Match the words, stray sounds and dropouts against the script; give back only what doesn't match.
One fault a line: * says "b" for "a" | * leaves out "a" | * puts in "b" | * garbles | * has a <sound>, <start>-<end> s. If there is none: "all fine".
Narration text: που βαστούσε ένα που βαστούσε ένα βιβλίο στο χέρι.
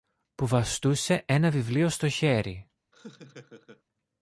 * leaves out "που βαστούσε ένα"
* has a laugh, 2.9-3.8 s